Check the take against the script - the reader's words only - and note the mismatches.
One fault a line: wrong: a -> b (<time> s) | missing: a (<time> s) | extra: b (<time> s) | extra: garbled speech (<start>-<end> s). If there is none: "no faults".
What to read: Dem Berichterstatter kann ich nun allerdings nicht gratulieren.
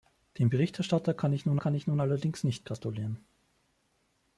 extra: kann ich nun (1.6 s)